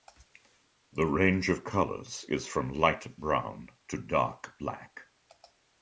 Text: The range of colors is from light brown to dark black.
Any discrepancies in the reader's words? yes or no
no